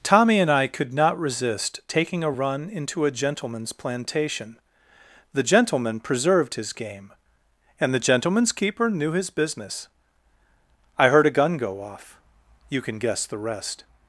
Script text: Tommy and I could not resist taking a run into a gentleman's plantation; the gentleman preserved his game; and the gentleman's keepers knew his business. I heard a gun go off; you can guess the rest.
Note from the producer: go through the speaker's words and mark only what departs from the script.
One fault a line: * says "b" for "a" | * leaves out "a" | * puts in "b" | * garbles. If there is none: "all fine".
* says "keeper" for "keepers"